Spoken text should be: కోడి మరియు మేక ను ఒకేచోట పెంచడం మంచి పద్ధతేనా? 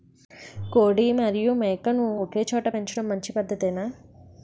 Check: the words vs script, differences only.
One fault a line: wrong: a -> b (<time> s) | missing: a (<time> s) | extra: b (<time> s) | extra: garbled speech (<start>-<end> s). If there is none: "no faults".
no faults